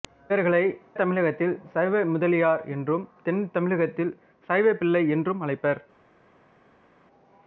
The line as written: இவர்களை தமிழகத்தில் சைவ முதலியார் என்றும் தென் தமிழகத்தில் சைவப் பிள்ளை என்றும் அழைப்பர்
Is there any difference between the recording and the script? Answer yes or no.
no